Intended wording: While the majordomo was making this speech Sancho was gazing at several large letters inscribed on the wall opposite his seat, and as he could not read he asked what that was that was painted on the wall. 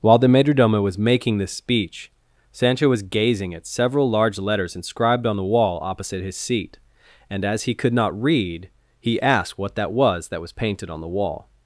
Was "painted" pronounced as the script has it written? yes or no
yes